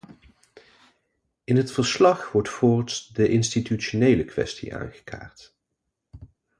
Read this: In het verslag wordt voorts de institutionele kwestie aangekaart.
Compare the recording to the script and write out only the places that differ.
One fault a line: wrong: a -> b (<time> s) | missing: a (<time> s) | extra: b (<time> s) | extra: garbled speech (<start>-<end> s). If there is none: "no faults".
no faults